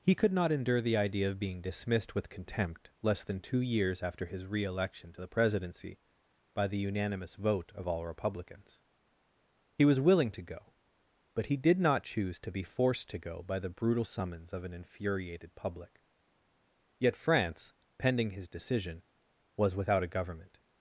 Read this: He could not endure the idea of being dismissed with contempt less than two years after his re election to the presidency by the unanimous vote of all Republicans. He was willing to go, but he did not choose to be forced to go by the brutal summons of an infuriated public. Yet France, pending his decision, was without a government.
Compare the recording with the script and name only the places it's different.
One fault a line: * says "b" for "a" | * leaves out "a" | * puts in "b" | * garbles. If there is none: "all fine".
all fine